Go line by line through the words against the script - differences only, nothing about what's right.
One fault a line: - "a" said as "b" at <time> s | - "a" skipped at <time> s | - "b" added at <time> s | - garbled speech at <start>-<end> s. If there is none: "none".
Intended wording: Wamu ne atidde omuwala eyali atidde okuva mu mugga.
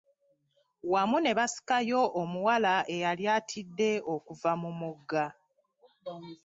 - "atidde" said as "basikayo" at 1.4 s